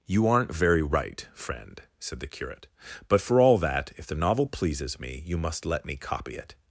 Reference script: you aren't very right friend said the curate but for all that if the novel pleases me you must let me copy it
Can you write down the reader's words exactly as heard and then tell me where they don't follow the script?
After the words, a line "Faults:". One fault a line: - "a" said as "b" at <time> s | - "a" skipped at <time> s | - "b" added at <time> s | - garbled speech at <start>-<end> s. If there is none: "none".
you aren't very right friend said the curate but for all that if the novel pleases me you must let me copy it
Faults:
none